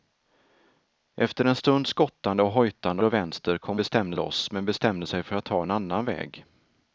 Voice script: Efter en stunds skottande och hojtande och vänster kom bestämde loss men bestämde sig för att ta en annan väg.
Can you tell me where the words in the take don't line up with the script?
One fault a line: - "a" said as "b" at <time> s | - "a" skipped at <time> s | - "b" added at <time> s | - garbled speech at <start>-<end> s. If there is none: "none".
none